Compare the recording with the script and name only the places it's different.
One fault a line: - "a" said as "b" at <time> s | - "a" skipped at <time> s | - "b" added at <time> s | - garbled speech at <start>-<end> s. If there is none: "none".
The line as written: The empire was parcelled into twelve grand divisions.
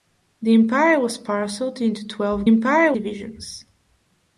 - "grand" said as "empire" at 2.5 s